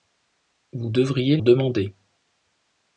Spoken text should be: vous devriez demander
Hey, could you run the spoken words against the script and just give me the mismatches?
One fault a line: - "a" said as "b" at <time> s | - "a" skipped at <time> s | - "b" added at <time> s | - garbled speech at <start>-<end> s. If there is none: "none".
none